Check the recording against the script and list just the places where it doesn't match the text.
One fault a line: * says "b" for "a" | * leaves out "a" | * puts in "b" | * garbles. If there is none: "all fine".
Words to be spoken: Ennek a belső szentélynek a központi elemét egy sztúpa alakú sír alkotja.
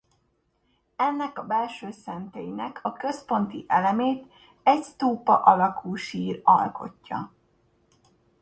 all fine